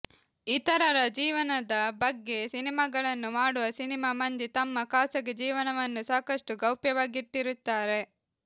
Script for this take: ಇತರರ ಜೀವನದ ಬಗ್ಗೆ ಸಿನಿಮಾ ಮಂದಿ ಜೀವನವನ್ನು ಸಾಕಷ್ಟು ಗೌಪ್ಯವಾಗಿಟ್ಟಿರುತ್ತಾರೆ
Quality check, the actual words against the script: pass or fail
fail